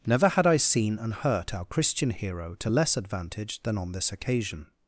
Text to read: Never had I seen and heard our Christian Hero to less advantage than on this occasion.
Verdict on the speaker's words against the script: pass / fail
fail